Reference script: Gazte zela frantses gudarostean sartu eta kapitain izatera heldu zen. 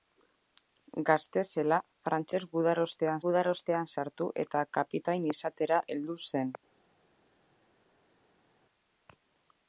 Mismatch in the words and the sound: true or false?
true